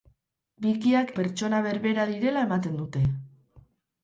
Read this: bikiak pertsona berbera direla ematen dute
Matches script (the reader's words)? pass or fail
pass